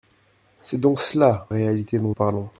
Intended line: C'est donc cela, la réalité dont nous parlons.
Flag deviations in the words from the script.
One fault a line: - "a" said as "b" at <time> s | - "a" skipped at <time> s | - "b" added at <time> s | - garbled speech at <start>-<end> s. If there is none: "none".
- "la" skipped at 1.5 s
- "nous" skipped at 2.1 s